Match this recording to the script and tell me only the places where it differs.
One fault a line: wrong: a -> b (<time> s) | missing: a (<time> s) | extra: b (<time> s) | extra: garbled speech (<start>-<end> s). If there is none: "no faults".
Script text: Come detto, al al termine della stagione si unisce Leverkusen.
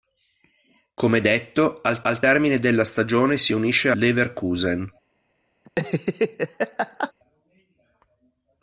no faults